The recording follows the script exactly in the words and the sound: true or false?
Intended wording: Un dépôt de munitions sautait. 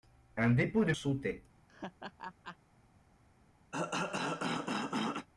false